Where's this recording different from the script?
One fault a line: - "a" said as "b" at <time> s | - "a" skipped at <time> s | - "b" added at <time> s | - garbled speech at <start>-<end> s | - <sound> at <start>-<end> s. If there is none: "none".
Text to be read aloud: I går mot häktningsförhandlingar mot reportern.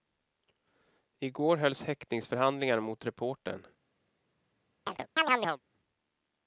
- "mot" said as "hölls" at 1.6 s
- chirp at 4.9-5.6 s